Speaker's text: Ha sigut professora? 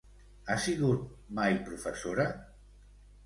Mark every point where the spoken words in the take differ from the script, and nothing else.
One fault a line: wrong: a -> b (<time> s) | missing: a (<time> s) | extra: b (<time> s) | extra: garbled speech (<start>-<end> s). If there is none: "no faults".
extra: mai (1.4 s)